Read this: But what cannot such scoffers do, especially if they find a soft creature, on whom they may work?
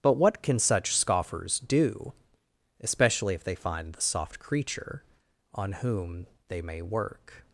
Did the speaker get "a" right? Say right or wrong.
wrong